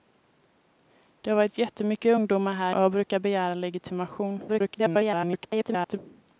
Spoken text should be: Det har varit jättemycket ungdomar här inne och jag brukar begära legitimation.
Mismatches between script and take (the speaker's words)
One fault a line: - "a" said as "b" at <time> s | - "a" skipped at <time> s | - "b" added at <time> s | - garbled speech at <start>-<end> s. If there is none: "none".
- "inne" skipped at 2.7 s
- garbled speech at 4.5-6.0 s